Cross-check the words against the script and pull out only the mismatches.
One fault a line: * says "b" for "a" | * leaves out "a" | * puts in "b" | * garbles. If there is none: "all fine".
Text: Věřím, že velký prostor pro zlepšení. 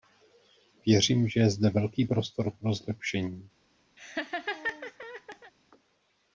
* puts in "je zde"